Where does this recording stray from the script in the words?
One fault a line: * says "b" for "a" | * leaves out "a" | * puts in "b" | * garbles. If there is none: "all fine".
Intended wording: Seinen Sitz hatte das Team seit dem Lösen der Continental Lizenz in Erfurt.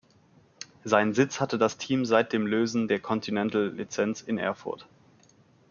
all fine